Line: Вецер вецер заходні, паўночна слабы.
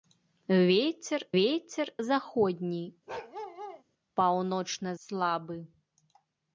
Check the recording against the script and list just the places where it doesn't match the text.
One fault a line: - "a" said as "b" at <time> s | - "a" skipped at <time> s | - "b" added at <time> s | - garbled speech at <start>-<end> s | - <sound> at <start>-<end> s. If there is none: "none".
- bark at 3.1-3.8 s